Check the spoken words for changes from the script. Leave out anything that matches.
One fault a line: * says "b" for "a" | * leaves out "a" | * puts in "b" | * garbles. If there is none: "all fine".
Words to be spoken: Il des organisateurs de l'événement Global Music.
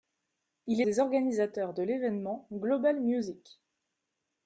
all fine